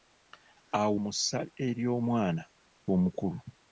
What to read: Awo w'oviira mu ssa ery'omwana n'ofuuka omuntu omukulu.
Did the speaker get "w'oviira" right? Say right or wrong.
wrong